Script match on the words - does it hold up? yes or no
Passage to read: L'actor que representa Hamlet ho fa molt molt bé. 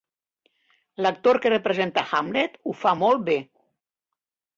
no